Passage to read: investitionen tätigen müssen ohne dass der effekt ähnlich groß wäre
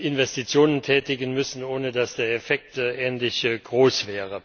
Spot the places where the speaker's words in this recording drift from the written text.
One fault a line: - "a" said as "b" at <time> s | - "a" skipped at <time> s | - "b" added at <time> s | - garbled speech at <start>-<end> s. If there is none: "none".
none